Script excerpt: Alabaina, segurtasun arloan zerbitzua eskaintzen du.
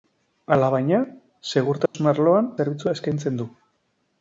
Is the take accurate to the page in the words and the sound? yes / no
no